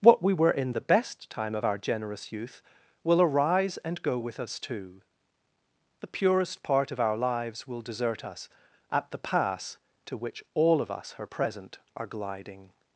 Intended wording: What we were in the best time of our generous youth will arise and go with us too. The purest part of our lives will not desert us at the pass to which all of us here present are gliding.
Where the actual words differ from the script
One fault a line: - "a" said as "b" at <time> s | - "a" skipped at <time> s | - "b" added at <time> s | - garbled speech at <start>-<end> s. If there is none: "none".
- "not" skipped at 7.8 s
- "here" said as "her" at 11.2 s